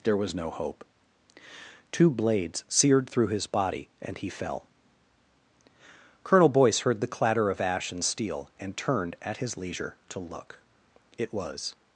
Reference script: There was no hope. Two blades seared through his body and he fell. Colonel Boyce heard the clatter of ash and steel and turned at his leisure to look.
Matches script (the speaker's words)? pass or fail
fail